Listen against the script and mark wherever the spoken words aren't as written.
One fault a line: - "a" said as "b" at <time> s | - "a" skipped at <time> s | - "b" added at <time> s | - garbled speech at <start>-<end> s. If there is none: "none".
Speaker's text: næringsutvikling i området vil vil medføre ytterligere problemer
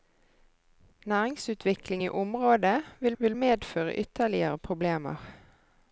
none